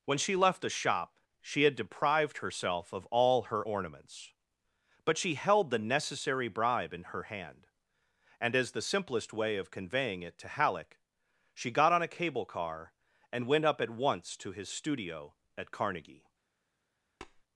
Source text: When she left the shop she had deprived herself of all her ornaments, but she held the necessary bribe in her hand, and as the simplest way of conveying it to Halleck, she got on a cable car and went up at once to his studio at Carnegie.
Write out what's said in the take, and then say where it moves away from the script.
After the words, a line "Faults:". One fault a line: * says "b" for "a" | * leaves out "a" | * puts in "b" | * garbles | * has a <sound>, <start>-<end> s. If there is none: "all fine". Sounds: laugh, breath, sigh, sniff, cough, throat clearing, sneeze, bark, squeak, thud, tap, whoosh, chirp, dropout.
When she left the shop she had deprived herself of all her ornaments, but she held the necessary bribe in her hand, and as the simplest way of conveying it to Halleck, she got on a cable car and went up at once to his studio at Carnegie.
Faults:
* has a tap, 17.2-17.4 s